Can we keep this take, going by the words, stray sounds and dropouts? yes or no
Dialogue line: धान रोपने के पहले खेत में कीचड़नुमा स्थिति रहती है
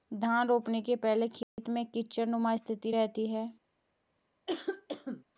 no